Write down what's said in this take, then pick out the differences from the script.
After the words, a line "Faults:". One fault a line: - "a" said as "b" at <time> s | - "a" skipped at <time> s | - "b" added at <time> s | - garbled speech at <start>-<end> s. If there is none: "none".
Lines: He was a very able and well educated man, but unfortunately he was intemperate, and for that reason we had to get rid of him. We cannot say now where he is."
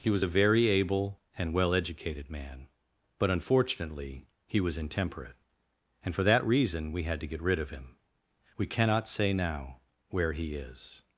He was a very able and well educated man, but unfortunately he was intemperate, and for that reason we had to get rid of him. We cannot say now where he is."
Faults:
none